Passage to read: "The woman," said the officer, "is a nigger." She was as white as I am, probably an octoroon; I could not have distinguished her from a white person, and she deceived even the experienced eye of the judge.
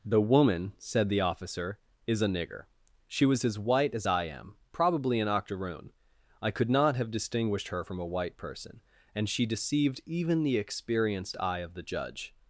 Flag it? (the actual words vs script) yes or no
no